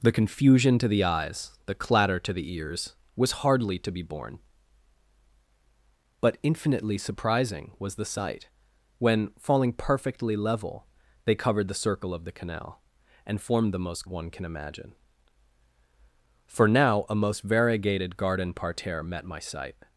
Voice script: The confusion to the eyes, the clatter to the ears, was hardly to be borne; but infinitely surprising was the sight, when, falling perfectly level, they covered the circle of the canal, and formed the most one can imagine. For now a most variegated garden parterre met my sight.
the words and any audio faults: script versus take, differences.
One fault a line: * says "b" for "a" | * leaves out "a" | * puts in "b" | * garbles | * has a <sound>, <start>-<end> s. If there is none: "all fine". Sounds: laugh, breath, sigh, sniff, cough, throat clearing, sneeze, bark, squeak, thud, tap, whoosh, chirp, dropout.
all fine